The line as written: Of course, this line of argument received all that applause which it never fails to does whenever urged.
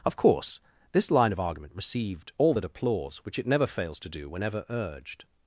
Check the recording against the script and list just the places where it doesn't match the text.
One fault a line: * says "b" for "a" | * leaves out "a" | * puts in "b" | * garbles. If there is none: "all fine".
* says "do" for "does"